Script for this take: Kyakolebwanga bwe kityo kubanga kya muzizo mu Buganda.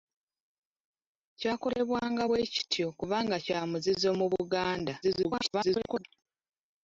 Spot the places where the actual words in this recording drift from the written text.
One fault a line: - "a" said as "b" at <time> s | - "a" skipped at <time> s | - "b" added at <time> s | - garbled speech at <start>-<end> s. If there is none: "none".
- garbled speech at 5.0-6.0 s